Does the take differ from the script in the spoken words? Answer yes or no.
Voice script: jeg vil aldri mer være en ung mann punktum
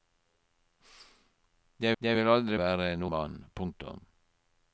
yes